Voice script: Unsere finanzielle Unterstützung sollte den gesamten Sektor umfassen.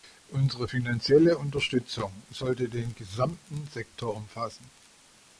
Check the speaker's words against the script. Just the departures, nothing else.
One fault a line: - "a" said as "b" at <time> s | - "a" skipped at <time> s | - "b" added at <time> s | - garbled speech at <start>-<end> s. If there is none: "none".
none